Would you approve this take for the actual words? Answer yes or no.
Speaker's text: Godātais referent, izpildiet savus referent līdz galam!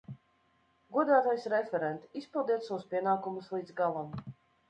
no